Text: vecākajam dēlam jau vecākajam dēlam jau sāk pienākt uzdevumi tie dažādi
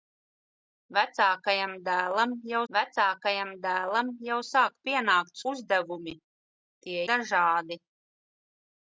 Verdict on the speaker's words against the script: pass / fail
pass